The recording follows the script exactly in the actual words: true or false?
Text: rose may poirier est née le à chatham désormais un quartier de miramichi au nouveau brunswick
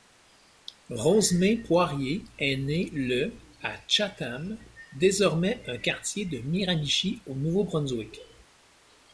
true